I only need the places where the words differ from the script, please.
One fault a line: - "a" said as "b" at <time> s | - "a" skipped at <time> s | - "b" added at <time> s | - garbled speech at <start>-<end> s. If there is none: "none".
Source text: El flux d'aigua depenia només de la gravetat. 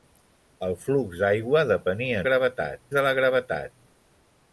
- "només" said as "gravetat" at 2.3 s